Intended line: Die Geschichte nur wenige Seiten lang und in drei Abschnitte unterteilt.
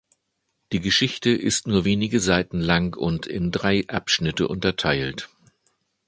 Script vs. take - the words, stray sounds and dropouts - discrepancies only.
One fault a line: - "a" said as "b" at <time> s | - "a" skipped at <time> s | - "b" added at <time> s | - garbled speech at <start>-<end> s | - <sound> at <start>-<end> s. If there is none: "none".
- "ist" added at 1.3 s